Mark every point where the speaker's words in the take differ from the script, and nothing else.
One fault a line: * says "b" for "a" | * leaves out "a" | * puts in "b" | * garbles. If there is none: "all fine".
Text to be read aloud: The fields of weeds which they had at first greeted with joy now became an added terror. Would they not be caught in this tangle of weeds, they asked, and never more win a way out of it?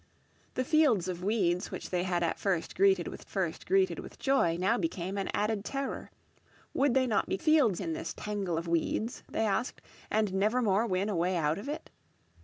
* puts in "first greeted with"
* says "fields" for "caught"